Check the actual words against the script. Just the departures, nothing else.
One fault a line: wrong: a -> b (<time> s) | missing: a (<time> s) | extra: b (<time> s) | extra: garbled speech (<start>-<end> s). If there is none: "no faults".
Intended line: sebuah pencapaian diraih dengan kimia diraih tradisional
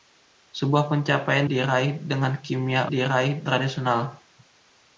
no faults